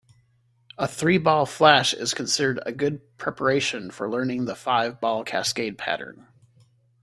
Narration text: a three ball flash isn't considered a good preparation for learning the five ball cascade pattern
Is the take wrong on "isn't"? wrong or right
wrong